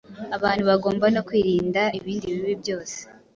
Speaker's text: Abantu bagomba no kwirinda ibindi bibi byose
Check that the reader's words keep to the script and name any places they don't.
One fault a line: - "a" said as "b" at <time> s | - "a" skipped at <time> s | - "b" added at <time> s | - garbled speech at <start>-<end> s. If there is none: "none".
none